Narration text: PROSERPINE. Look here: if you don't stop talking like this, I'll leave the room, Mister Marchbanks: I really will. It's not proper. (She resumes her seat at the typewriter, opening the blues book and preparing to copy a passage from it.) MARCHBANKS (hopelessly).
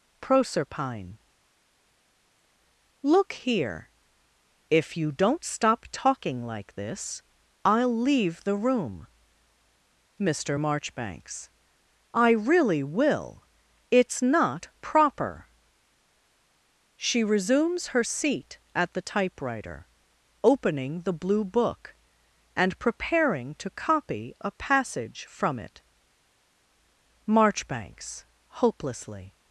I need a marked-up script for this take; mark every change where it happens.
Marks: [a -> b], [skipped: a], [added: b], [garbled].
PROSERPINE. Look here: if you don't stop talking like this, I'll leave the room, Mister Marchbanks: I really will. It's not proper. (She resumes her seat at the typewriter, opening the [blues -> blue] book and preparing to copy a passage from it.) MARCHBANKS (hopelessly).